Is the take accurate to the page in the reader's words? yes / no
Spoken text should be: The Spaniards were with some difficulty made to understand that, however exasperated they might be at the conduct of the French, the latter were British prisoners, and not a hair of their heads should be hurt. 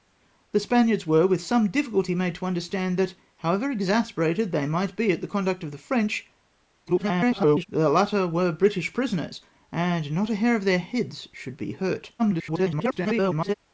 no